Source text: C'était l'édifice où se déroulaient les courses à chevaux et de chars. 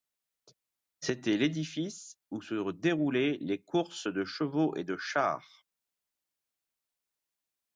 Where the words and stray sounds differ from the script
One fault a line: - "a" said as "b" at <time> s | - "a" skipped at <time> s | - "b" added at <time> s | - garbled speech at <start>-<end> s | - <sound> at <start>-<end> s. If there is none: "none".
- "à" said as "de" at 4.1 s